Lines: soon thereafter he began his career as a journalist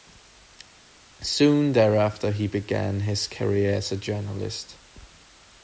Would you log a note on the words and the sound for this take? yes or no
no